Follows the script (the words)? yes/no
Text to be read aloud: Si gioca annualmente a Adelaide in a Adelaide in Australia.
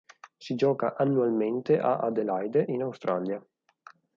no